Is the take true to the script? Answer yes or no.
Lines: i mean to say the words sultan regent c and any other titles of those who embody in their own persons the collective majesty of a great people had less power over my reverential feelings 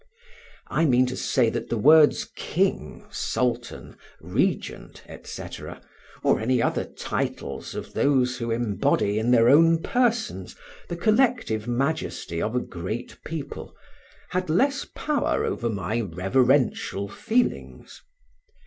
no